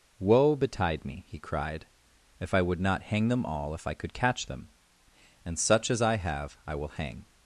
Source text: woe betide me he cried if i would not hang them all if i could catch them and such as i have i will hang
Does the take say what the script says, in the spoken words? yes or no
yes